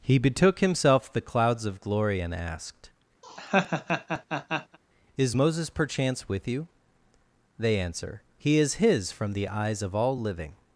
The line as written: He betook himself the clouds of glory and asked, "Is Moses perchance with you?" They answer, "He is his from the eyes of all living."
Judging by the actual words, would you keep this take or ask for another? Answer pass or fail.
pass